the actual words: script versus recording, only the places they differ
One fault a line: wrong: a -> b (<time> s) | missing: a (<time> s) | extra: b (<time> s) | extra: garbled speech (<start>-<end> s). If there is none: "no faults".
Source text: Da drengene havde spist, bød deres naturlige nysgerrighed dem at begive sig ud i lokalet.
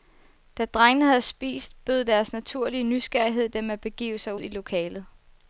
missing: ud (4.3 s)